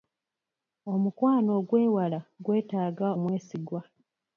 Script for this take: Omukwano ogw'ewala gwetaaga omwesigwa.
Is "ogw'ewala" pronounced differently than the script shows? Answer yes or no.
no